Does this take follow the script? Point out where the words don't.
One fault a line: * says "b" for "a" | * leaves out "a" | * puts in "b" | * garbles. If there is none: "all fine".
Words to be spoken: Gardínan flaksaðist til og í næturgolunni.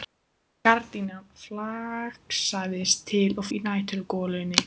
all fine